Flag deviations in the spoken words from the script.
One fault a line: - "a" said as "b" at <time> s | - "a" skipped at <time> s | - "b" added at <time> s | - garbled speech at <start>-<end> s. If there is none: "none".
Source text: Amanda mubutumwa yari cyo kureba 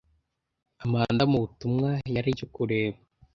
none